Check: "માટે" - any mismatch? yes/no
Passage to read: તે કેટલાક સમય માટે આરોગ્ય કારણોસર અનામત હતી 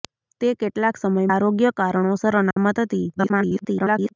yes